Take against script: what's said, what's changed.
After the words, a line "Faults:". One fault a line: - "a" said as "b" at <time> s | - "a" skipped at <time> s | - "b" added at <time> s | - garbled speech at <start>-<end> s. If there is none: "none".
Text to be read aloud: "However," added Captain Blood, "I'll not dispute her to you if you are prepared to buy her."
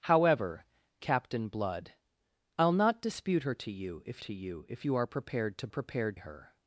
"However," Captain Blood, "I'll not dispute her to you if to you if you are prepared to prepared her."
Faults:
- "added" skipped at 0.7 s
- "to" added at 4.2 s
- "if you" added at 4.7 s
- "buy" said as "prepared" at 5.7 s